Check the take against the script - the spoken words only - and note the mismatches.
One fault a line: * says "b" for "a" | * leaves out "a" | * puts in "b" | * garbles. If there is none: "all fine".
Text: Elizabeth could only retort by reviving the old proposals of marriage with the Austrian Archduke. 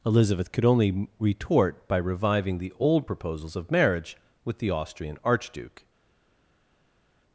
all fine